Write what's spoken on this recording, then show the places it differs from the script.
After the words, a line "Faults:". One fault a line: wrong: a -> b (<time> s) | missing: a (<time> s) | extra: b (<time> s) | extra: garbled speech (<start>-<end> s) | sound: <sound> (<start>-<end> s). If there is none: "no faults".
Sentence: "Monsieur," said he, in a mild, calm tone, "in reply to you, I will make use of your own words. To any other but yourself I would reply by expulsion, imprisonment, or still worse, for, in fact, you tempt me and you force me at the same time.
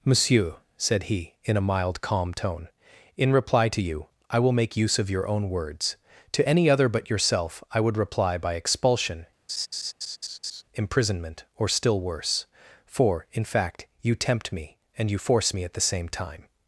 "Monsieur," said he, in a mild, calm tone, "in reply to you, I will make use of your own words. To any other but yourself I would reply by expulsion, imprisonment, or still worse, for, in fact, you tempt me and you force me at the same time.
Faults:
sound: laugh (9.5-10.6 s)